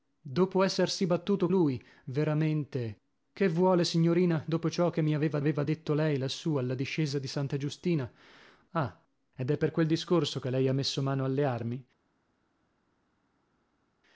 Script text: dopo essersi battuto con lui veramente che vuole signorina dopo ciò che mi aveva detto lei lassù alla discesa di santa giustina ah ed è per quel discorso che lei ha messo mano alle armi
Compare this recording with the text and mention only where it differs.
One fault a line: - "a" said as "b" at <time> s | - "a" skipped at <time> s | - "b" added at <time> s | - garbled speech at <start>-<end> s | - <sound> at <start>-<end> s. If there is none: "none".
- "con" skipped at 1.5 s
- "aveva" added at 5.4 s